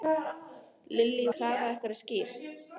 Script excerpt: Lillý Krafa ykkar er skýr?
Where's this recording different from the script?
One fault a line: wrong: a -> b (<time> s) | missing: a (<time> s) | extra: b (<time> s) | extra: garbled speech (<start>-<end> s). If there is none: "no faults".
no faults